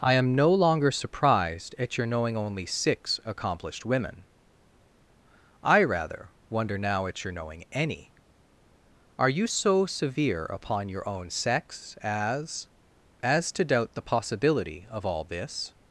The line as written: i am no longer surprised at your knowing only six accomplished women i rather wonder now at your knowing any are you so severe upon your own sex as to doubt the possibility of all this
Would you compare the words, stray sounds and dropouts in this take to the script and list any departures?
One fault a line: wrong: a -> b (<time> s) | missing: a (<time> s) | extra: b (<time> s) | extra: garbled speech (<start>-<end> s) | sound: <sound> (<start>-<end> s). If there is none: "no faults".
extra: as (13.2 s)